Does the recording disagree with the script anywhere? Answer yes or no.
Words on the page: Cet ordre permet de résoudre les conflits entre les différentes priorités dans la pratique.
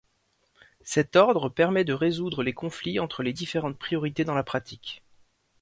no